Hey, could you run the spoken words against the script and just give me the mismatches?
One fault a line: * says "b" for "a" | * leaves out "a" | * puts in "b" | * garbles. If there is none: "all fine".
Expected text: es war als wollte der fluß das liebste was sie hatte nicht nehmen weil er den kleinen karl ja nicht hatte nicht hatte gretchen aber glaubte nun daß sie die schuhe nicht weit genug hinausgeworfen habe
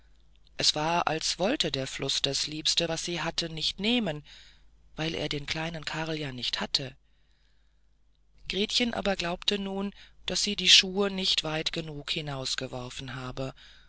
* leaves out "nicht hatte"